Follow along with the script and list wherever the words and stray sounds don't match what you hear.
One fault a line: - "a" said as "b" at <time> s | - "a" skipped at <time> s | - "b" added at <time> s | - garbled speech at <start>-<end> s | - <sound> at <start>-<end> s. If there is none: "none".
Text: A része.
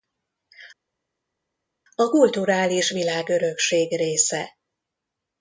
- "kulturális világörökség" added at 2.1 s